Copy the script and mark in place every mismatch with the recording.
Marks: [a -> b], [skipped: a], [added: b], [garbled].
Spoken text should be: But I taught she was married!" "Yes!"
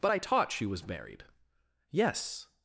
But I taught she was married!" "Yes!"